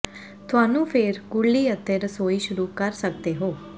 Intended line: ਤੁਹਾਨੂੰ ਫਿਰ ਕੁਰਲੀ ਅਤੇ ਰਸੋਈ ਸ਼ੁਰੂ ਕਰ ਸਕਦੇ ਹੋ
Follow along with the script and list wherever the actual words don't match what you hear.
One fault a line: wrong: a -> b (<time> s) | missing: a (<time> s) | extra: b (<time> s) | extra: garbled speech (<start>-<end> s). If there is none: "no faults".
no faults